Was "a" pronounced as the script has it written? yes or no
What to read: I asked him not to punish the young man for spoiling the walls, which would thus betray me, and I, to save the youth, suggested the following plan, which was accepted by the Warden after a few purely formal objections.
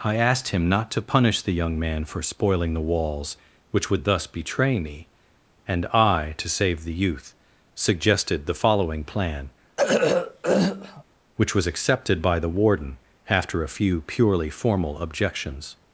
yes